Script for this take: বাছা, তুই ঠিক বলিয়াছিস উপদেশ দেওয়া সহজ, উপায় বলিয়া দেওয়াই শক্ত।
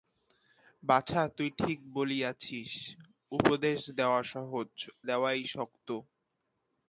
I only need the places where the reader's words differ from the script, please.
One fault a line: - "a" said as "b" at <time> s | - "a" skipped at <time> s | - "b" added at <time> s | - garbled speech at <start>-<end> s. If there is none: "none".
- "উপায় বলিয়া" skipped at 4.7 s